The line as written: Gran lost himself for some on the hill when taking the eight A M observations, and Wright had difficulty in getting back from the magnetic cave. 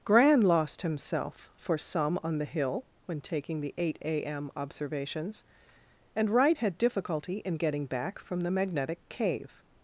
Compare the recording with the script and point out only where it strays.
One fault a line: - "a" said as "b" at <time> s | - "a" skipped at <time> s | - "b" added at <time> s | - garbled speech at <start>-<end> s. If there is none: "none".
none